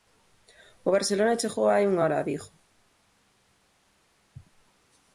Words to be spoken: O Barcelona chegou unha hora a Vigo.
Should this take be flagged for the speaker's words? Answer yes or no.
yes